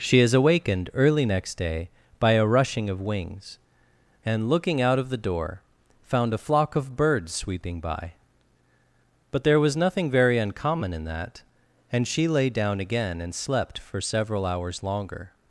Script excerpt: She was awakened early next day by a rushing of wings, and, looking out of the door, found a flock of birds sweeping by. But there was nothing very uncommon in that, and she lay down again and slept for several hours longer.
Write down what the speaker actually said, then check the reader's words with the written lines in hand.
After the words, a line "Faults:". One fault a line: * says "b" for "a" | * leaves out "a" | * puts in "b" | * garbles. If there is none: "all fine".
She is awakened early next day by a rushing of wings, and, looking out of the door, found a flock of birds sweeping by. But there was nothing very uncommon in that, and she lay down again and slept for several hours longer.
Faults:
* says "is" for "was"